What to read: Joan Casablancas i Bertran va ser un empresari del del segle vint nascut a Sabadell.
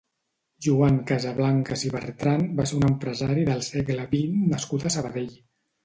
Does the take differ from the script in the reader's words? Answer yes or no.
yes